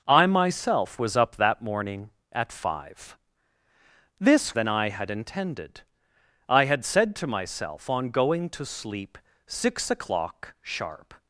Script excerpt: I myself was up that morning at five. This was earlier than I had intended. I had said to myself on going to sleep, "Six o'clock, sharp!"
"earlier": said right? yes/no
no